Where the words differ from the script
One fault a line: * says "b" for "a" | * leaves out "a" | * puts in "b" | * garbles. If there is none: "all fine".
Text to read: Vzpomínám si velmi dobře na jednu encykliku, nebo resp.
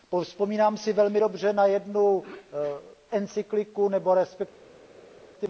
all fine